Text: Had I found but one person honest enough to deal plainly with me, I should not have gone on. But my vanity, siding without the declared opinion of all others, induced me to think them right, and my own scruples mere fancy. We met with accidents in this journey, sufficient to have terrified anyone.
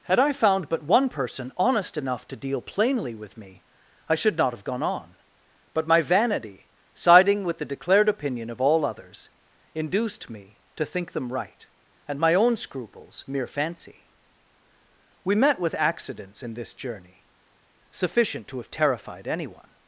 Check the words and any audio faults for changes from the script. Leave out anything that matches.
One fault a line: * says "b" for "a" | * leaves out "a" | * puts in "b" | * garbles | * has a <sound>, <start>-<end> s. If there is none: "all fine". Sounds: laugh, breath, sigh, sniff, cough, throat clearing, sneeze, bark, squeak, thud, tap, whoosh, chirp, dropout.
* says "with" for "without"